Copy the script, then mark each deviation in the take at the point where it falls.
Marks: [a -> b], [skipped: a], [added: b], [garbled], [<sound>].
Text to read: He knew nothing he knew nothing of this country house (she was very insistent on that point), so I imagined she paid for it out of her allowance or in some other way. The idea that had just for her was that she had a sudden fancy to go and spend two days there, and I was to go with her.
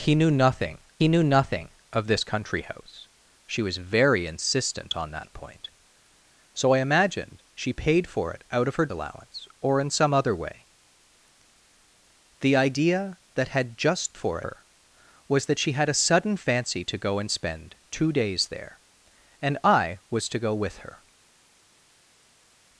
He knew nothing he knew nothing of this country house (she was very insistent on that point), so I imagined she paid for it out of her allowance or in some other way. The idea that had just for her was that she had a sudden fancy to go and spend two days there, and I was to go with her.